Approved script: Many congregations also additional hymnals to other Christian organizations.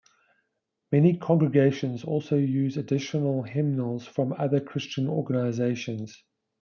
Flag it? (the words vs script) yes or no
yes